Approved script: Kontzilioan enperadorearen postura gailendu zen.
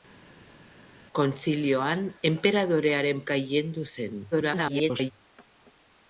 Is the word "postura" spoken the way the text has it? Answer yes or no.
no